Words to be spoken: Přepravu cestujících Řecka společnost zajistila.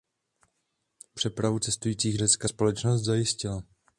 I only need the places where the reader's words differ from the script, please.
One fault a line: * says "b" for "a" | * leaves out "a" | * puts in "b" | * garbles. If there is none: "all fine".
all fine